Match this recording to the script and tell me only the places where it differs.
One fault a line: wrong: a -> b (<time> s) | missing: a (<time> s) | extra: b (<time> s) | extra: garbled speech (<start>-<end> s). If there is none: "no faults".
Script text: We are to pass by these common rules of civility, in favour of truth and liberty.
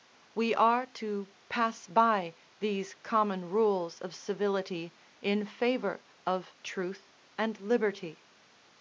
no faults